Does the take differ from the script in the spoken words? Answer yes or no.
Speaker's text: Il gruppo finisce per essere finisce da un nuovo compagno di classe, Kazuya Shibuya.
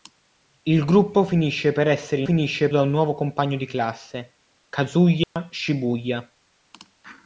no